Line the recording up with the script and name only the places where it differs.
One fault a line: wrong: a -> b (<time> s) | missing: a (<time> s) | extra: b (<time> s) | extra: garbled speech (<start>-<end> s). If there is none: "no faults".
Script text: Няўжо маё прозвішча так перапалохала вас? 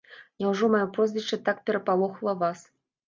no faults